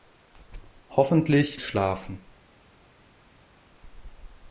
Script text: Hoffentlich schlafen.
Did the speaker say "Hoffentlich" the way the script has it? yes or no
yes